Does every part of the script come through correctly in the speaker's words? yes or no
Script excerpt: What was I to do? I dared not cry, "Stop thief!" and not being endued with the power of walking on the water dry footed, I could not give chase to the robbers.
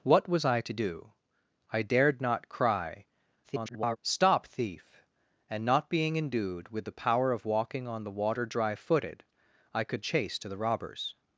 no